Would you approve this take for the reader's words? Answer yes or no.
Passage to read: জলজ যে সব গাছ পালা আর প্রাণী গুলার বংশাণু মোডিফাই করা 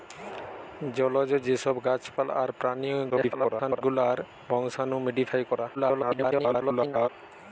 no